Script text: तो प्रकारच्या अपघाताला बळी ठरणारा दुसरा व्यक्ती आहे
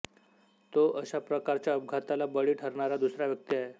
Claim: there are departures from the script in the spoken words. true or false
true